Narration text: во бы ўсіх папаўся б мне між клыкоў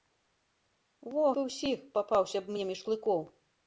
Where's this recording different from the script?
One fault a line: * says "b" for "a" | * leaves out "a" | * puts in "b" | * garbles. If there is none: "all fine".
all fine